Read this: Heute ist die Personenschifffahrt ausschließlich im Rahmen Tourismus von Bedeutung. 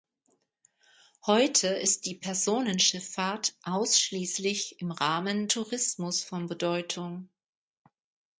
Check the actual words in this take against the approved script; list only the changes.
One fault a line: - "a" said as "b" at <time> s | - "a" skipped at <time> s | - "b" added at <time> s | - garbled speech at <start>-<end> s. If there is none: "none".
none